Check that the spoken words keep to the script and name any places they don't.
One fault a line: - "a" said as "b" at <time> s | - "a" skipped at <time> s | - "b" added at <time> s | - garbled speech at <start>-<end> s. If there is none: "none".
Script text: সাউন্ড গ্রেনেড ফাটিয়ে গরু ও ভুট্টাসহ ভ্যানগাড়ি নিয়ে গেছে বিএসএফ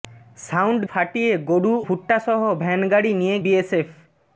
- "গ্রেনেড" skipped at 0.8 s
- "ও" skipped at 1.7 s
- "গেছে" skipped at 3.4 s